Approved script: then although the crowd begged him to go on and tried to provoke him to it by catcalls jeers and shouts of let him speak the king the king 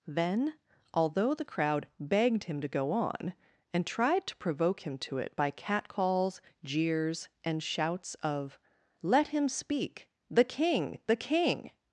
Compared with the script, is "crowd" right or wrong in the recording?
right